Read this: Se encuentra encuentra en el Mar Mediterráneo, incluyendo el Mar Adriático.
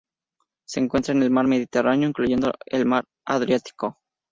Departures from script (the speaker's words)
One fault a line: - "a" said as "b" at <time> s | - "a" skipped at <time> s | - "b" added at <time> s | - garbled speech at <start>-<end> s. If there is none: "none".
- "encuentra" skipped at 1.1 s